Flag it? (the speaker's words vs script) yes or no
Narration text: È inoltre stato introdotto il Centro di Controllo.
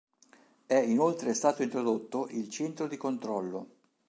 no